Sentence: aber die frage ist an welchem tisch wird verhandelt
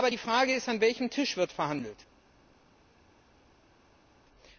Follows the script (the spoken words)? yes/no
yes